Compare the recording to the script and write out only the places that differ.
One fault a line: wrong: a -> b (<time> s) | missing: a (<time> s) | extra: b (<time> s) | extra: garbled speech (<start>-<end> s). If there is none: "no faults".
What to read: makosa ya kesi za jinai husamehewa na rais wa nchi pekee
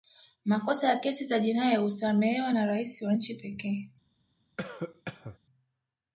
no faults